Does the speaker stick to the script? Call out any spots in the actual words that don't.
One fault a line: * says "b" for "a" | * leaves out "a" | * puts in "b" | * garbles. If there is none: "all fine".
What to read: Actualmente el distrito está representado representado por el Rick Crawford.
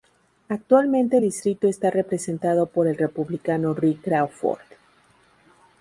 * leaves out "representado"
* puts in "Republicano"